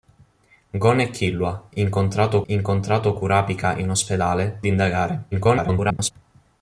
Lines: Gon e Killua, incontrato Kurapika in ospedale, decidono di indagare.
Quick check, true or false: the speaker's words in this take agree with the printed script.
false